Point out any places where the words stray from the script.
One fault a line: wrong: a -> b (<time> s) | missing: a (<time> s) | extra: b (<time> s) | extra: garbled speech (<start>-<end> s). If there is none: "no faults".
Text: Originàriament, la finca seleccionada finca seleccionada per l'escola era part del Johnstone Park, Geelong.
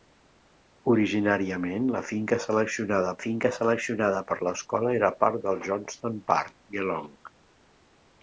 no faults